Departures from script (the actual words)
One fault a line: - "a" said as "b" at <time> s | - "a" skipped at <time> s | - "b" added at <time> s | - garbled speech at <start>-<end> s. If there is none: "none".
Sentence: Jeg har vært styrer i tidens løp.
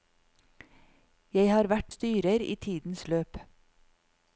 none